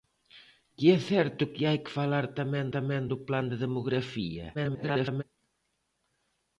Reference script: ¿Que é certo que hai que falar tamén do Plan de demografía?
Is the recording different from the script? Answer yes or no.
yes